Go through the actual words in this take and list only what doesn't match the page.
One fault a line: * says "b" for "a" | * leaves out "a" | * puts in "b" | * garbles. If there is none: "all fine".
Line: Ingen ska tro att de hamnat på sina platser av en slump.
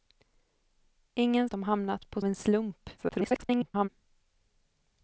* leaves out "ska tro att"
* leaves out "sina platser av"
* garbles